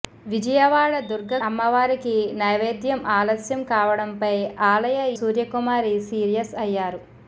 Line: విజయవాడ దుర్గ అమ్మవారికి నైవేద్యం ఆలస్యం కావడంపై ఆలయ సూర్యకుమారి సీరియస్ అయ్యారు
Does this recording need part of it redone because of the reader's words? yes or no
no